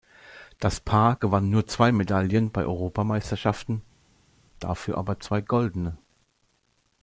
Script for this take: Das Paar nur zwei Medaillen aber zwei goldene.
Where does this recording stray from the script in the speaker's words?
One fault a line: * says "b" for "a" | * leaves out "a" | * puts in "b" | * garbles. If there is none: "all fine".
* puts in "gewann"
* puts in "bei Europameisterschaften dafür"